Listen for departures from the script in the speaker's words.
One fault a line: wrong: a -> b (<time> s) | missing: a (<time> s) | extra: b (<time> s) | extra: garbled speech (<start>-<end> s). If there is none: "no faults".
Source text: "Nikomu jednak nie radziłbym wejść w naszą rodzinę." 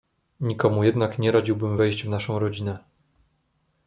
no faults